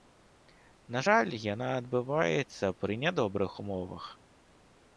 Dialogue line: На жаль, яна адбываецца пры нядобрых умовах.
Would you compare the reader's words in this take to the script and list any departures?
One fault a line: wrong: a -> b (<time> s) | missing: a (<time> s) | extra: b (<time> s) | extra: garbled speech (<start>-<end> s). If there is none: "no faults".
no faults